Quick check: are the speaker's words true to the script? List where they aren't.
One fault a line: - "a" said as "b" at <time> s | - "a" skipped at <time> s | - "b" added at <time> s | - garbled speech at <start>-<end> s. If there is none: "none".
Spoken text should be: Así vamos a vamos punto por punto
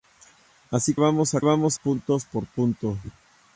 none